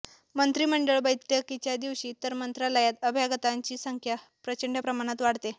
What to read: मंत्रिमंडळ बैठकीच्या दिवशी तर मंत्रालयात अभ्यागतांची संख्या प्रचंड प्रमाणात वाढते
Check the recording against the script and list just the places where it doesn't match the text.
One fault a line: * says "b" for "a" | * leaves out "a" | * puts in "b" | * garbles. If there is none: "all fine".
all fine